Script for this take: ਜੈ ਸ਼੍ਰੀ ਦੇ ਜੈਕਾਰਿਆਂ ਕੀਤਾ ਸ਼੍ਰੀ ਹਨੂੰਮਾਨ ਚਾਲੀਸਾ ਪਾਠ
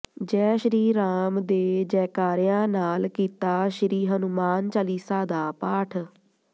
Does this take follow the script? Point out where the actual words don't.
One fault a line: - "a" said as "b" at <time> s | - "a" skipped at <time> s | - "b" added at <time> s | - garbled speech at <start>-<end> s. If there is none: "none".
- "ਰਾਮ" added at 0.9 s
- "ਨਾਲ" added at 2.7 s
- "ਦਾ" added at 5.2 s